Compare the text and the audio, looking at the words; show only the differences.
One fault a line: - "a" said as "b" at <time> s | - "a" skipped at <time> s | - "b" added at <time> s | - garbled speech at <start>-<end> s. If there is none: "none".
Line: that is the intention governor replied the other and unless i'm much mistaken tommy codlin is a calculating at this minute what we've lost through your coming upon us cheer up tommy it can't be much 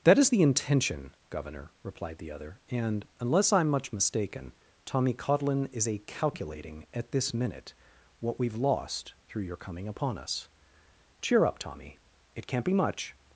none